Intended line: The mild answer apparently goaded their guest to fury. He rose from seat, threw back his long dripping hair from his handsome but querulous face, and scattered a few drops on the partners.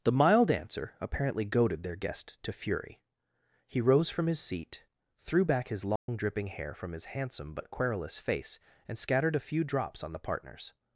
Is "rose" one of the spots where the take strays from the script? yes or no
no